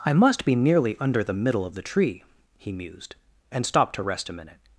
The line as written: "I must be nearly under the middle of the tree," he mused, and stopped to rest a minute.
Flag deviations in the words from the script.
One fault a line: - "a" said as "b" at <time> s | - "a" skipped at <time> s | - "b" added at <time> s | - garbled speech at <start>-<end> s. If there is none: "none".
none